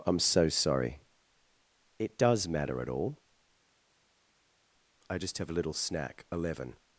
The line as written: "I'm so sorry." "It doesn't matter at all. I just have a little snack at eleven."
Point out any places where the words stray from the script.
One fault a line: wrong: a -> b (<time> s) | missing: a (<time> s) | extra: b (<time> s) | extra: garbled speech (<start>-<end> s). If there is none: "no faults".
wrong: doesn't -> does (2.2 s)
missing: at (6.2 s)